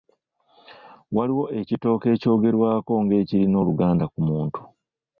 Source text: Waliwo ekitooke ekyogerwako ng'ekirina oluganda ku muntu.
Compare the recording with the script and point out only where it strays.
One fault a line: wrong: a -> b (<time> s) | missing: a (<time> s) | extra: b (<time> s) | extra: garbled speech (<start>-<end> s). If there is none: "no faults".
no faults